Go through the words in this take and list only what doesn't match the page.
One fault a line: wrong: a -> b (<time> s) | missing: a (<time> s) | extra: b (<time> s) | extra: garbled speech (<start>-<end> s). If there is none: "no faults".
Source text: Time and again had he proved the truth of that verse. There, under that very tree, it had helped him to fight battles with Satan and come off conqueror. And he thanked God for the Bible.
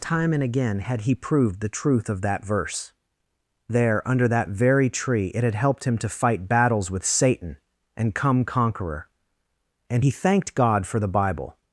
missing: off (8.4 s)